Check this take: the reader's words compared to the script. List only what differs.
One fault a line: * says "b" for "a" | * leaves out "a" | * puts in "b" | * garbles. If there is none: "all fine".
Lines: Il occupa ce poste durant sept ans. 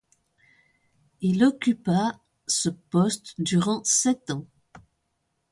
all fine